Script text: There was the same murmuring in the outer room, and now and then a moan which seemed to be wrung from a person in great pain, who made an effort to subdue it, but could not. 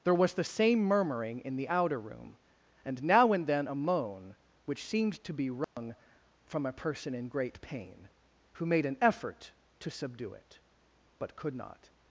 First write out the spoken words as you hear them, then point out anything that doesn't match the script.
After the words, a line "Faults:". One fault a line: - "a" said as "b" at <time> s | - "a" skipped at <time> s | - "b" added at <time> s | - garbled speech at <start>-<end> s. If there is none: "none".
There was the same murmuring in the outer room, and now and then a moan which seemed to be wrung from a person in great pain, who made an effort to subdue it, but could not.
Faults:
none